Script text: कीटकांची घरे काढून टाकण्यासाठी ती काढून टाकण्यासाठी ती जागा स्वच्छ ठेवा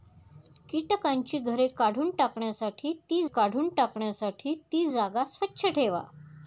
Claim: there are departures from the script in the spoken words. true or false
false